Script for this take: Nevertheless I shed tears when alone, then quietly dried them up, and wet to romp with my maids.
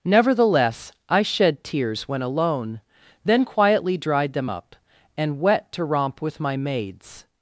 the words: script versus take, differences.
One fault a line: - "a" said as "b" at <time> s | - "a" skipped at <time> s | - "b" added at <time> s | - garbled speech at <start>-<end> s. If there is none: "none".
none